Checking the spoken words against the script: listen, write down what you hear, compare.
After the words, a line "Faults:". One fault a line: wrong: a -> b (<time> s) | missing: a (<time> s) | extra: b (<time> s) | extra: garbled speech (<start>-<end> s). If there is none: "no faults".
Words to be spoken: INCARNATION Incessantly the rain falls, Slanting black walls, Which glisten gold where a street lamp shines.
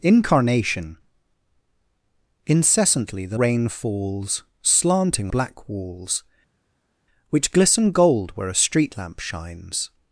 INCARNATION Incessantly the rain falls, Slanting black walls, Which glisten gold where a street lamp shines.
Faults:
no faults